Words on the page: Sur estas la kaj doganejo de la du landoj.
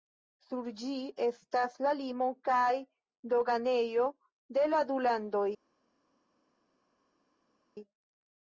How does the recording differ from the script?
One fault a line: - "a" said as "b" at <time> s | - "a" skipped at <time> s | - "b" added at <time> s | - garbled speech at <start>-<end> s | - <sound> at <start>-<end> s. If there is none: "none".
- "ĝi" added at 0.8 s
- "limo" added at 2.0 s